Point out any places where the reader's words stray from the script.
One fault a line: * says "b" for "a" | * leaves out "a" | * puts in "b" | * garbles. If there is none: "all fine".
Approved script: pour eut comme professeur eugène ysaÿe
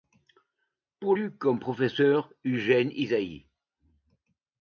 all fine